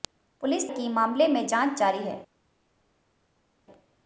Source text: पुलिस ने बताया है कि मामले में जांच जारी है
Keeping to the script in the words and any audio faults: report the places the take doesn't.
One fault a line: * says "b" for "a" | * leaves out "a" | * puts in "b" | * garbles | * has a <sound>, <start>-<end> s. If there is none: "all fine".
* leaves out "ने बताया है"